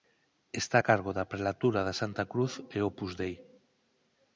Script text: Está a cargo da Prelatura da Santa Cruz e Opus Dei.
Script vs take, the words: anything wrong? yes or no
no